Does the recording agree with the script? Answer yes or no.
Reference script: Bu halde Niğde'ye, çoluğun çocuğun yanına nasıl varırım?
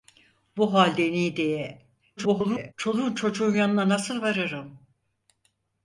no